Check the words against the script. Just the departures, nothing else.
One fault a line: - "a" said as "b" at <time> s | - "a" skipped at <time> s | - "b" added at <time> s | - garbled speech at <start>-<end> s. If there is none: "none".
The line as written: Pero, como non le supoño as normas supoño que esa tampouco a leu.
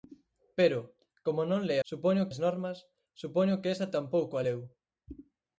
none